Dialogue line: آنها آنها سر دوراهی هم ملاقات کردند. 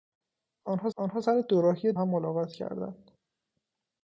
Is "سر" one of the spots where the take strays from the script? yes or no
no